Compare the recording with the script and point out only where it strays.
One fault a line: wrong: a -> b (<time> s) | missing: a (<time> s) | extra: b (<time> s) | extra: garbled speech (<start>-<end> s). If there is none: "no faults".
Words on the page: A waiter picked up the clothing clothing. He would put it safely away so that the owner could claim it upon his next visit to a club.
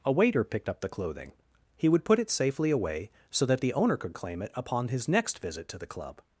missing: clothing (1.3 s)
wrong: a -> the (5.8 s)